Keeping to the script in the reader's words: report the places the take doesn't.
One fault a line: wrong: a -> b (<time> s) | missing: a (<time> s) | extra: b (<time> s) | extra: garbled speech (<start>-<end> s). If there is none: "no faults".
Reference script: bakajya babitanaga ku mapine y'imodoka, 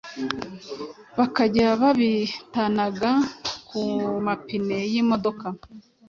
no faults